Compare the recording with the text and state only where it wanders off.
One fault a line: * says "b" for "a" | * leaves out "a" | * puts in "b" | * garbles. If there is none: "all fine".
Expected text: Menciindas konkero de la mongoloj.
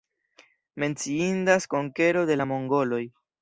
all fine